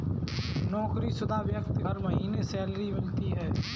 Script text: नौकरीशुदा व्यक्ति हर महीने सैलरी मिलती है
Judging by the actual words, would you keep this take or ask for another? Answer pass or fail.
pass